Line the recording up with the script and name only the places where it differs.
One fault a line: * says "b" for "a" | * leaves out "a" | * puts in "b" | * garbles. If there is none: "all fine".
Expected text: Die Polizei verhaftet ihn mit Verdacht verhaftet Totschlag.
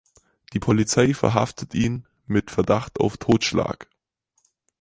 * says "auf" for "verhaftet"